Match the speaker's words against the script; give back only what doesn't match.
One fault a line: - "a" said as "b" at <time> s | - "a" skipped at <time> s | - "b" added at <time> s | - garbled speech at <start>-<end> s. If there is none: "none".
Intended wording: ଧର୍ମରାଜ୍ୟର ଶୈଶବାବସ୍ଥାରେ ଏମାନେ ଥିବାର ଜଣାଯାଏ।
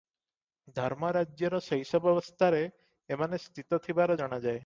- "ସ୍ଥିତ" added at 3.4 s